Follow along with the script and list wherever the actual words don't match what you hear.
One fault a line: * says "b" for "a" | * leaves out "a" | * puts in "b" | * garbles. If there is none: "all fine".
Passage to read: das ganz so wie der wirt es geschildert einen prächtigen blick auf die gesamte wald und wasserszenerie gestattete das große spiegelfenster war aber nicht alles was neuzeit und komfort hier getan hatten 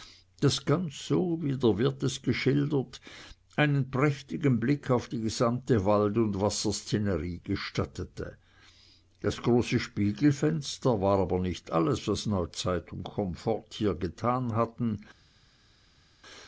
all fine